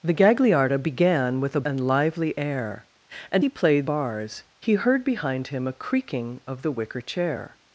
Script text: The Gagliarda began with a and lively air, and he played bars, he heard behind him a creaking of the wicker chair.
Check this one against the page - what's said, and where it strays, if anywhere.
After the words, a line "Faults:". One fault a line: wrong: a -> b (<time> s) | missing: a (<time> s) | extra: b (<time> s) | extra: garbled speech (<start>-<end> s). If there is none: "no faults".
The Gagliarda began with a and lively air, and he played bars, he heard behind him a creaking of the wicker chair.
Faults:
no faults